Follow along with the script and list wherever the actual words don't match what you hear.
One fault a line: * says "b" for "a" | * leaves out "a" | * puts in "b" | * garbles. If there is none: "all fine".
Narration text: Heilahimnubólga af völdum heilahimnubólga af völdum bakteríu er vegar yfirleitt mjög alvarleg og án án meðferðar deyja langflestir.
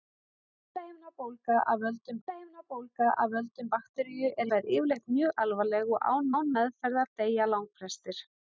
all fine